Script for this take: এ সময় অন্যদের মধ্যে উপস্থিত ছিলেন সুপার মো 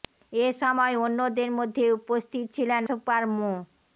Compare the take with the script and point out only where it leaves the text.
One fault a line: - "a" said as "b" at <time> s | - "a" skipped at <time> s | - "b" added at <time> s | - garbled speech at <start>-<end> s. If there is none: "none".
none